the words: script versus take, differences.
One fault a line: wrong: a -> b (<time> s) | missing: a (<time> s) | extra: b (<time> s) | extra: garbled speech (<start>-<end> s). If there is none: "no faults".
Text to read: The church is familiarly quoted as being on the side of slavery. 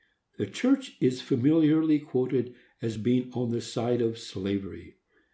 no faults